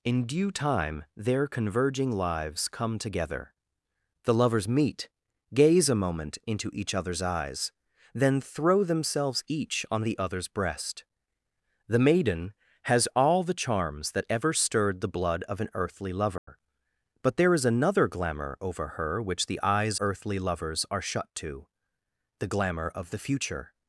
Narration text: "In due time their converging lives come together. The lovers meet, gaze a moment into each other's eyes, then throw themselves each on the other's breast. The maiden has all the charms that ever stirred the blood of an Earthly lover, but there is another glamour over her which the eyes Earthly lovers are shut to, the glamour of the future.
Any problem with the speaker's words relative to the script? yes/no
no